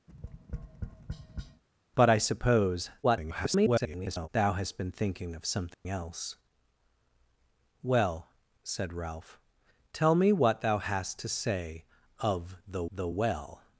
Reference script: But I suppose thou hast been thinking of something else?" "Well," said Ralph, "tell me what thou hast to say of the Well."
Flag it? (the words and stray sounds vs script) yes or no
yes